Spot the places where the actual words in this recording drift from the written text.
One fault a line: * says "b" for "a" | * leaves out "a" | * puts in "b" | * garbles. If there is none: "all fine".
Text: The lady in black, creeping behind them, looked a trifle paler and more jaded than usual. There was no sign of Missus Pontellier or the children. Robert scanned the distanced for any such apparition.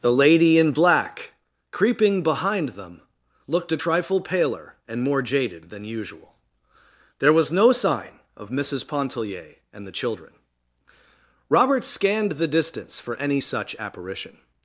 * says "and" for "or"
* says "distance" for "distanced"